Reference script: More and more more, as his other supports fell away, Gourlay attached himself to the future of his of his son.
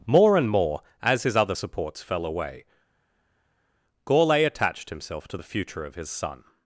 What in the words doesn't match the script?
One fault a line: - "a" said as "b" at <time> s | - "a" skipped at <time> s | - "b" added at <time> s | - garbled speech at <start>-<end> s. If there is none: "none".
- "more" skipped at 0.8 s
- "of his" skipped at 6.1 s